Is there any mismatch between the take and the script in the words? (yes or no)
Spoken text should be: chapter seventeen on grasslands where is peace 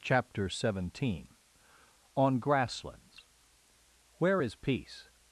no